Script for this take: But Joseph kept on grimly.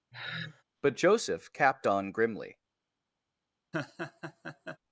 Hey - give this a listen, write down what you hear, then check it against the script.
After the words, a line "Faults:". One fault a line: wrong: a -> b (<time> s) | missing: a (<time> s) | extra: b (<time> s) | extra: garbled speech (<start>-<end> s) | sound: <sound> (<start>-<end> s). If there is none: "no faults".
But Joseph capped on grimly.
Faults:
sound: sigh (0.1-0.6 s)
wrong: kept -> capped (1.5 s)
sound: laugh (3.7-4.8 s)